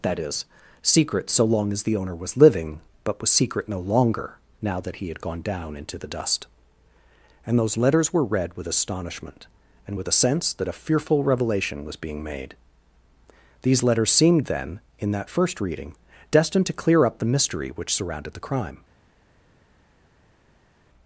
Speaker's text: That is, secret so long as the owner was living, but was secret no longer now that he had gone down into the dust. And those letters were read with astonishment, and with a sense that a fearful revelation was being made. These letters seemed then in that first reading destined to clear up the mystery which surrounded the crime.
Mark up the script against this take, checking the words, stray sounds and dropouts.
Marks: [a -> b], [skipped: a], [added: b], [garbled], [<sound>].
That is, secret so long as the owner was living, but was secret no longer now that he had gone down into the dust. And those letters were read with astonishment, and with a sense that a fearful revelation was being made. These letters seemed then in that first reading destined to clear up the mystery which surrounded the crime.